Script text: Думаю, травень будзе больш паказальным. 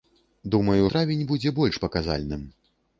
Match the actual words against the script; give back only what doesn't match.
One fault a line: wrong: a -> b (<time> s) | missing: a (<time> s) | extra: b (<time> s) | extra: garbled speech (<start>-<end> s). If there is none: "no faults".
no faults